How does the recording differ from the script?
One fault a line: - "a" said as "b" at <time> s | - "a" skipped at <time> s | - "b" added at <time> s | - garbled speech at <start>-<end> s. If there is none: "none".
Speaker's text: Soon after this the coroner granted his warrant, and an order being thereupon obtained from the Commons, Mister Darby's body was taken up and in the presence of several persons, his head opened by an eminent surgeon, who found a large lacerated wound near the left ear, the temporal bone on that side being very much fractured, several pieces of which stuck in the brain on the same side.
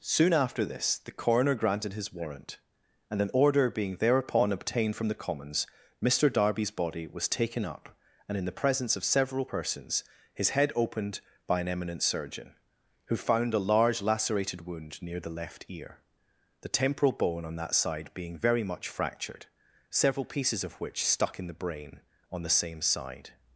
none